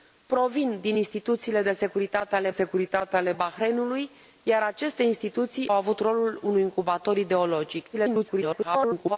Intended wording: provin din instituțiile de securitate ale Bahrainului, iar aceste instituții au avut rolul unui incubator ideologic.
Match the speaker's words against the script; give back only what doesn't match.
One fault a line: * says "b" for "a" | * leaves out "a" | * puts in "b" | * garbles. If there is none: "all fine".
* puts in "securitate ale"
* leaves out "au"
* garbles